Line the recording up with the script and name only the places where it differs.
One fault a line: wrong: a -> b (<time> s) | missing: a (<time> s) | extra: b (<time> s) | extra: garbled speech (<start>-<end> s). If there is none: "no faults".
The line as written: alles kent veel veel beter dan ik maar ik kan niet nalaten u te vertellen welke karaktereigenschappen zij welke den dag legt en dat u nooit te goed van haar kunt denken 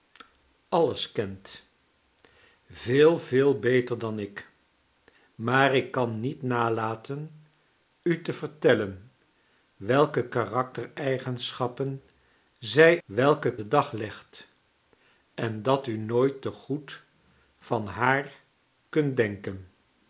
no faults